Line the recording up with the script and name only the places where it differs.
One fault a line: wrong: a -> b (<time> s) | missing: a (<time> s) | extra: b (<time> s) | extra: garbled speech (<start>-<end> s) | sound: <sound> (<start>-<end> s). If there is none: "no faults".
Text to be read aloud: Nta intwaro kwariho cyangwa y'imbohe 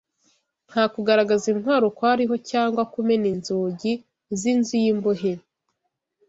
extra: kugaragaza (0.9 s)
extra: kumena inzugi z'inzu (2.9 s)